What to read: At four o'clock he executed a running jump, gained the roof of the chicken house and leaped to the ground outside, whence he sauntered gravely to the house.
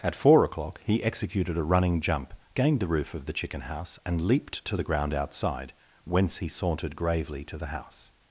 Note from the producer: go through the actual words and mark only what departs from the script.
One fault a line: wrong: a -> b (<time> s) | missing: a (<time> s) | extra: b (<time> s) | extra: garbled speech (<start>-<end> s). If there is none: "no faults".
no faults